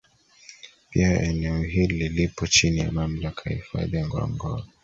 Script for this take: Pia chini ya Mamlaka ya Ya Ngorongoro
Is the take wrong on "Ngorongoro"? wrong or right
right